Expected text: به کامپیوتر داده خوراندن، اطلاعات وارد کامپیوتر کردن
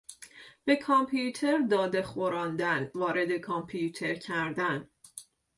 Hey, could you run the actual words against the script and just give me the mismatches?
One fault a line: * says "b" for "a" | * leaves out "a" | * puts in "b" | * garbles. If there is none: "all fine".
* leaves out "اطلاعات"